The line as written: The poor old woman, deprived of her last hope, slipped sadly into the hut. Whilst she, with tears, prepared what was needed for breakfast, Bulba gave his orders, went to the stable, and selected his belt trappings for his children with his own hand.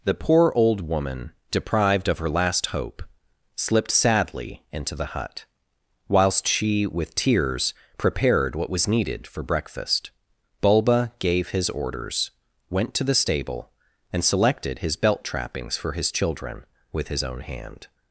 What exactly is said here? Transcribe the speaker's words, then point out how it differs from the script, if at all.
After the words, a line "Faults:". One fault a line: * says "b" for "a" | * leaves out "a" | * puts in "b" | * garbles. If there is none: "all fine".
The poor old woman, deprived of her last hope, slipped sadly into the hut. Whilst she, with tears, prepared what was needed for breakfast, Bulba gave his orders, went to the stable, and selected his belt trappings for his children with his own hand.
Faults:
all fine